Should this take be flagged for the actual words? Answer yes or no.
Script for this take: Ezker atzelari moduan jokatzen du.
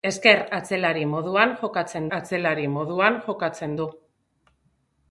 yes